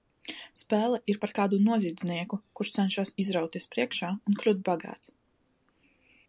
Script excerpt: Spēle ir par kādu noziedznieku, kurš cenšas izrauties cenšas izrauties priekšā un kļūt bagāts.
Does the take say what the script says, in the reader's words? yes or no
no